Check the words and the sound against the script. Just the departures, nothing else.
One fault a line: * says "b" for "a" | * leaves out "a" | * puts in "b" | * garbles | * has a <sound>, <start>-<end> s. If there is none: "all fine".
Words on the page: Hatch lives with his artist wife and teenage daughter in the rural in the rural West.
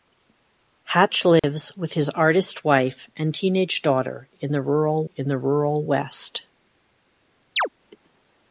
* has a dropout, 1.4-1.4 s
* has a chirp, 7.6-7.7 s